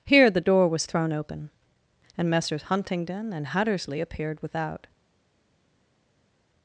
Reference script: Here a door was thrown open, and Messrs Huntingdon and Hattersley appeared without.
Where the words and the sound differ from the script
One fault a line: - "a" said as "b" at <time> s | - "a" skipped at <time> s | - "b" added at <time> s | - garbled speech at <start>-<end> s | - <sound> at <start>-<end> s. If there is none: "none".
- "a" said as "the" at 0.3 s